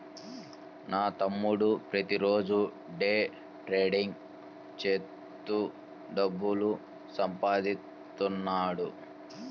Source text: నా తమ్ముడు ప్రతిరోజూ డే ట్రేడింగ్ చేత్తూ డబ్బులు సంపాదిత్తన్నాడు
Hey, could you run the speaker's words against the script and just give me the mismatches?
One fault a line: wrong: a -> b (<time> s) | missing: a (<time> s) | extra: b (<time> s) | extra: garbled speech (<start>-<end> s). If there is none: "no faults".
no faults